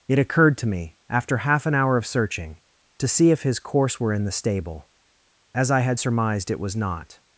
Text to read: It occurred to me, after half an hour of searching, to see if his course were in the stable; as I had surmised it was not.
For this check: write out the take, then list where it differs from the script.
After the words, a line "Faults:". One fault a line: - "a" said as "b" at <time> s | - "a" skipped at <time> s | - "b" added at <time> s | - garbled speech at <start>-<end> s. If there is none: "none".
It occurred to me, after half an hour of searching, to see if his course were in the stable; as I had surmised it was not.
Faults:
none